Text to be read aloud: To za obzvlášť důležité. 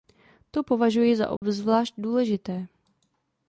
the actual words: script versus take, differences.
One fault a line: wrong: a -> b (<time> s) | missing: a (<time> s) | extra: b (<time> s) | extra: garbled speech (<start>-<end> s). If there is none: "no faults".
extra: považuji (0.6 s)